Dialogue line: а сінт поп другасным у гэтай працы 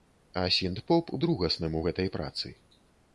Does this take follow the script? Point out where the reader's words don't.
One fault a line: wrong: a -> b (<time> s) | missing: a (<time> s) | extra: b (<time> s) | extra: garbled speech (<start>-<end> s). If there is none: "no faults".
no faults